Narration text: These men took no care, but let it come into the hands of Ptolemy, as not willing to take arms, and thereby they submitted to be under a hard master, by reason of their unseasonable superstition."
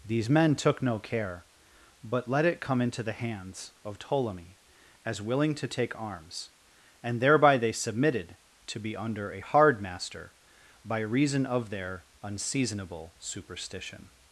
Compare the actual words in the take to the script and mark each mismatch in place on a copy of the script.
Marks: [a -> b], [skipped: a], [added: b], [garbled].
These men took no care, but let it come into the hands of Ptolemy, as [skipped: not] willing to take arms, and thereby they submitted to be under a hard master, by reason of their unseasonable superstition."